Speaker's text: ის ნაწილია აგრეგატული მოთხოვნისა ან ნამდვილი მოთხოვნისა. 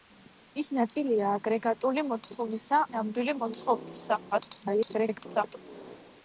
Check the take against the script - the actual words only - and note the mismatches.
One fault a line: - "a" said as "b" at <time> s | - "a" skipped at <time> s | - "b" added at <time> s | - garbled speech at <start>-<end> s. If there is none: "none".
- "ან" skipped at 2.8 s
- garbled speech at 4.3-5.6 s